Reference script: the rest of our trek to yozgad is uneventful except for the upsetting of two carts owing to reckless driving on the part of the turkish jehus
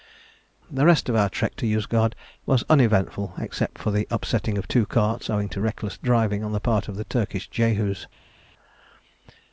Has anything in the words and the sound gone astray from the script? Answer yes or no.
yes